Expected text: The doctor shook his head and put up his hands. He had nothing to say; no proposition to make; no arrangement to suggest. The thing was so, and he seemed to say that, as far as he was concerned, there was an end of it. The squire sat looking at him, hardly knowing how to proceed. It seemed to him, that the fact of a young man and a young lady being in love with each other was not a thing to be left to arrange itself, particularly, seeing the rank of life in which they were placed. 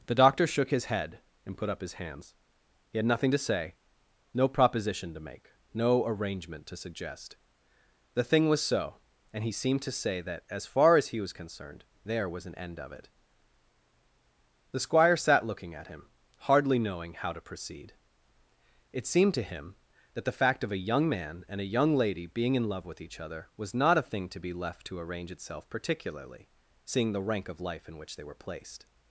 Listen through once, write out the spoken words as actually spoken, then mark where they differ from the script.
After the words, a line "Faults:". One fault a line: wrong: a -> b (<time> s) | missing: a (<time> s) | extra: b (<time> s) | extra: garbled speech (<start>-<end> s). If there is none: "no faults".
The doctor shook his head and put up his hands. He had nothing to say; no proposition to make; no arrangement to suggest. The thing was so, and he seemed to say that, as far as he was concerned, there was an end of it. The squire sat looking at him, hardly knowing how to proceed. It seemed to him, that the fact of a young man and a young lady being in love with each other was not a thing to be left to arrange itself, particularly, seeing the rank of life in which they were placed.
Faults:
no faults